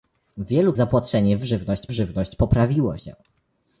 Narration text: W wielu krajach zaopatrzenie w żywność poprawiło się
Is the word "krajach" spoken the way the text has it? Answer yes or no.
no